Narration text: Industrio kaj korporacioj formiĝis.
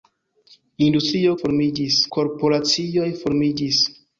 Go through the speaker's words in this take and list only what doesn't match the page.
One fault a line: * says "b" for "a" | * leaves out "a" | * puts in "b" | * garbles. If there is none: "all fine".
* says "formiĝis" for "kaj"